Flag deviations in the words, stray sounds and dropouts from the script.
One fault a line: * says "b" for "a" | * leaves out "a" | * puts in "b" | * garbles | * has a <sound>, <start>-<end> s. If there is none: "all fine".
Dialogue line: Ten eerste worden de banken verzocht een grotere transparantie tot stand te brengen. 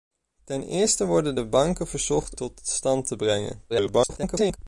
* leaves out "een grotere transparantie"
* garbles